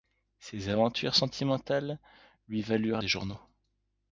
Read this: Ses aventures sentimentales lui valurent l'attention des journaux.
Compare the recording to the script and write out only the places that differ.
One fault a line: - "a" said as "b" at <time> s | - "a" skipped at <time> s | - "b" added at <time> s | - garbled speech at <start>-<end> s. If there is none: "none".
- "l'attention" skipped at 3.0 s